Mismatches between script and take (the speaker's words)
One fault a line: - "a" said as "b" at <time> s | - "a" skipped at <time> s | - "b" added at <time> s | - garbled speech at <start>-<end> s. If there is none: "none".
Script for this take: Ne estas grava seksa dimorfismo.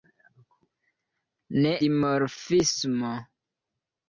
- "estas grava seksa" skipped at 1.7 s